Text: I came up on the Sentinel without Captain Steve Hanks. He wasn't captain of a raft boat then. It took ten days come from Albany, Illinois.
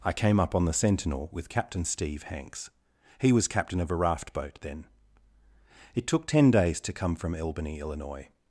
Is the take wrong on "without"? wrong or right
wrong